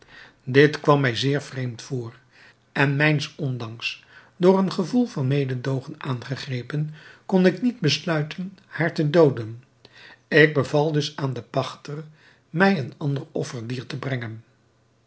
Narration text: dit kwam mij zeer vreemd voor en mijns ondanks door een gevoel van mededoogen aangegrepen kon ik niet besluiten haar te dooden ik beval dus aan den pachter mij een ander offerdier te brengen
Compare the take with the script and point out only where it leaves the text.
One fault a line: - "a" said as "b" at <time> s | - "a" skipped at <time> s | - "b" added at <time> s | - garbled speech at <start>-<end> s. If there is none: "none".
none